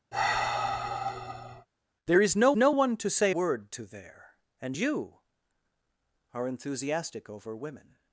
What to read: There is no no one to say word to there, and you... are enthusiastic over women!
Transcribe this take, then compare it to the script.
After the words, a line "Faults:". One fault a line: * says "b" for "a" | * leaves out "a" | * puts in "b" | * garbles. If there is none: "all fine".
There is no no one to say word to there, and you... are enthusiastic over women!
Faults:
all fine